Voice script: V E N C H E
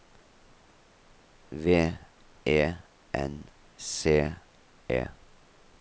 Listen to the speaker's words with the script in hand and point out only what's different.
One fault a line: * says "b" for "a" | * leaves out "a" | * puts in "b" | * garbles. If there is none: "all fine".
* leaves out "H"